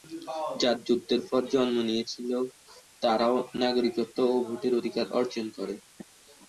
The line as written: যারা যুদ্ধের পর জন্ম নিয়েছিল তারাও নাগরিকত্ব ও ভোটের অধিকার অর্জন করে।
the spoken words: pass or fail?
pass